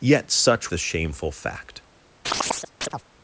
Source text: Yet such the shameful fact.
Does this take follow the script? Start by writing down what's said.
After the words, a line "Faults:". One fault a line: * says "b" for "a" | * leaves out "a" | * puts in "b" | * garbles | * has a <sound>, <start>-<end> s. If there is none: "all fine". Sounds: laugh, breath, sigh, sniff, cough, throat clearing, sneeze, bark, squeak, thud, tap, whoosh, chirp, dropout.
Yet such the shameful fact.
Faults:
* has a chirp, 2.2-3.0 s